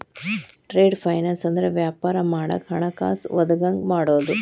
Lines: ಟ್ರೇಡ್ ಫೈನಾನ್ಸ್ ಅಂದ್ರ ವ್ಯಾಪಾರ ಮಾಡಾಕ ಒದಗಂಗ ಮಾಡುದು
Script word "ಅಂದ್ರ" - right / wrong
right